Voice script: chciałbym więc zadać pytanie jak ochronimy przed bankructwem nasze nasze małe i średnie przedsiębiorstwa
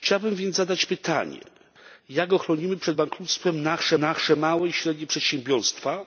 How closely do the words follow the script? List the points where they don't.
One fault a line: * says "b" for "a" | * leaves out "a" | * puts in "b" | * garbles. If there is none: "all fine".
all fine